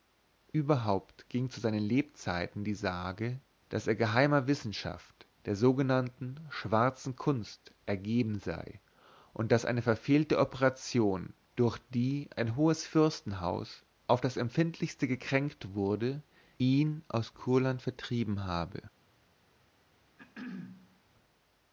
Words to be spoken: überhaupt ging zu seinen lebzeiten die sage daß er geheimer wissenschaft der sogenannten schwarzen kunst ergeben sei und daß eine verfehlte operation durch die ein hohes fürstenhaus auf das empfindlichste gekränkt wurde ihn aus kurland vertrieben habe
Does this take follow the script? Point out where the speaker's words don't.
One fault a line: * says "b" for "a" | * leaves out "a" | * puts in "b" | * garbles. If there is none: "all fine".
all fine